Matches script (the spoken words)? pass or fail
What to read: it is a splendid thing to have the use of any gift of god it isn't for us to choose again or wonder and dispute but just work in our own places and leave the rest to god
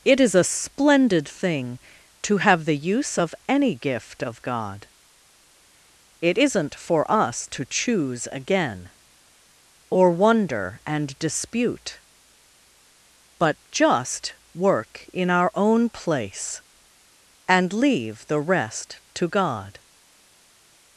fail